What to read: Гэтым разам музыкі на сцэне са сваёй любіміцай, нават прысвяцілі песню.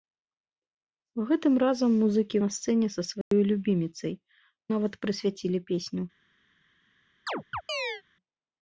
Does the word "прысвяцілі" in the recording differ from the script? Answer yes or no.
no